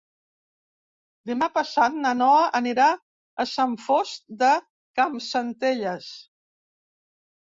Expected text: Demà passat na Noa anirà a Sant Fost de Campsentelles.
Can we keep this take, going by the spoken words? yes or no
yes